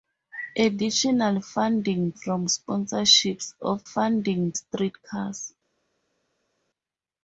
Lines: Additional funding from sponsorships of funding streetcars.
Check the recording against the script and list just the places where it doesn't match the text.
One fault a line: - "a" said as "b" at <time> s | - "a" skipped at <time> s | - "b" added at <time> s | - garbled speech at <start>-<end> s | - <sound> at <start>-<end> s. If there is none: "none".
none